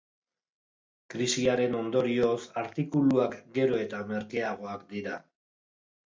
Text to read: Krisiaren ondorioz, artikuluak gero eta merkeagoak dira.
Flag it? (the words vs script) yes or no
no